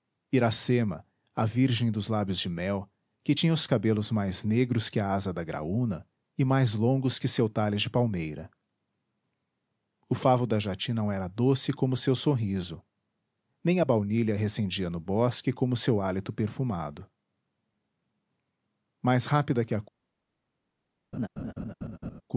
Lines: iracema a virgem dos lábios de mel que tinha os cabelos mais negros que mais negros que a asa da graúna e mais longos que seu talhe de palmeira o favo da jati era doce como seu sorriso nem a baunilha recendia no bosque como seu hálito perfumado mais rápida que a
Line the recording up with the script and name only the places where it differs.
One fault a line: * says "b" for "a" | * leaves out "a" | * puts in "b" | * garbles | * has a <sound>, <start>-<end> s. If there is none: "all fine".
* leaves out "mais negros que"
* puts in "não"
* has a laugh, 21.1-22.2 s